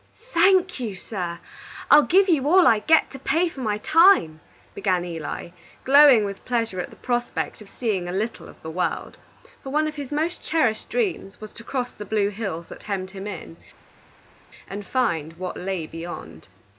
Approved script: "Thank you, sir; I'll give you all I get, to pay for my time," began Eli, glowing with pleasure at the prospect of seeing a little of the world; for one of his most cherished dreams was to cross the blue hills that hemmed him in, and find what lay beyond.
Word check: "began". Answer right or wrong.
right